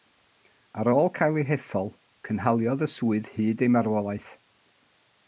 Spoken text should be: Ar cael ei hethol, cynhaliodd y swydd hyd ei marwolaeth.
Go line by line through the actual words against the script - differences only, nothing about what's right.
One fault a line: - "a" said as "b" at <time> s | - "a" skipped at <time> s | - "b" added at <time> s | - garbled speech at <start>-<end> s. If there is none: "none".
- "ôl" added at 0.9 s